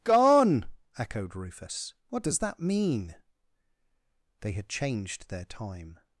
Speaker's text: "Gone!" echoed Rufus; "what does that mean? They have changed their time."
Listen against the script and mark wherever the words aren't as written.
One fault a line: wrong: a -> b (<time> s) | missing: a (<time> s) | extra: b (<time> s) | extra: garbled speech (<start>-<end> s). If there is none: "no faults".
wrong: have -> had (4.5 s)